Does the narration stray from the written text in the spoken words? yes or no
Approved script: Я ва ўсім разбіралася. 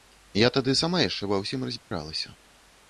yes